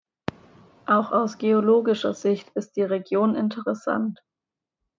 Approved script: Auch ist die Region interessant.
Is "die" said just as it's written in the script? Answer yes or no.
yes